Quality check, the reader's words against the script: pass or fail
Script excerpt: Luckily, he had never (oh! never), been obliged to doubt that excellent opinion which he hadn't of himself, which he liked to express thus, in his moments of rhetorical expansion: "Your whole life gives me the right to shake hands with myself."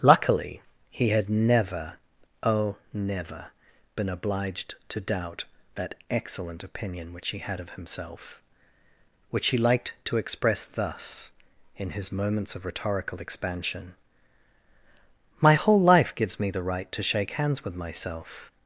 fail